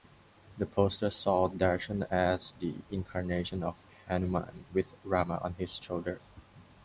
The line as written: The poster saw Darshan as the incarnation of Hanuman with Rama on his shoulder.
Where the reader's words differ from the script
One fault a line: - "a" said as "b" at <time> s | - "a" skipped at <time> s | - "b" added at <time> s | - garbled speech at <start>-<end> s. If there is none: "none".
none